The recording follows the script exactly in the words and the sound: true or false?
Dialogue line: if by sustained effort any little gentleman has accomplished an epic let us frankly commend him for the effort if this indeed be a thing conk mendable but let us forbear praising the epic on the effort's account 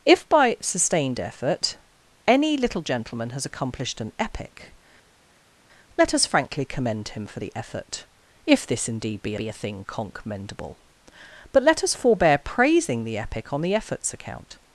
false